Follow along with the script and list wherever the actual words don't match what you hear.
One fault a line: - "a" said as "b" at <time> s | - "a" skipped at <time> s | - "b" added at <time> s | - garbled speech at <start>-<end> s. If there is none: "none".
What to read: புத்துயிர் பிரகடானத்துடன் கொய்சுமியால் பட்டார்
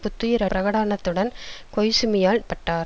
none